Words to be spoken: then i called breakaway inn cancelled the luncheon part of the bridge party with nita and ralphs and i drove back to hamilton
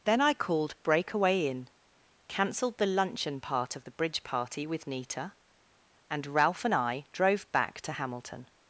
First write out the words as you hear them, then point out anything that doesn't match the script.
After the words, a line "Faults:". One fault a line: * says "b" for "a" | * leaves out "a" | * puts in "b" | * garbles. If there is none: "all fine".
then i called breakaway inn cancelled the luncheon part of the bridge party with nita and ralph and i drove back to hamilton
Faults:
* says "ralph" for "ralphs"